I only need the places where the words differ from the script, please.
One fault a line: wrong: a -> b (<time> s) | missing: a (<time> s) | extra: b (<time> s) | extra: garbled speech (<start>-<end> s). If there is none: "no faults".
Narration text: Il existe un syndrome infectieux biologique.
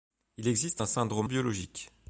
missing: infectieux (1.3 s)